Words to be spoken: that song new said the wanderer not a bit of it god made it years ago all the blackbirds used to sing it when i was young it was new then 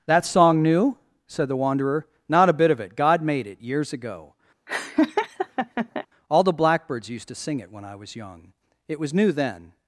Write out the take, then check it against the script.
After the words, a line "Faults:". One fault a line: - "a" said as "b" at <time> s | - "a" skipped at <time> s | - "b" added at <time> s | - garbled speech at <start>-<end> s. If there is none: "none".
that song new said the wanderer not a bit of it god made it years ago all the blackbirds used to sing it when i was young it was new then
Faults:
none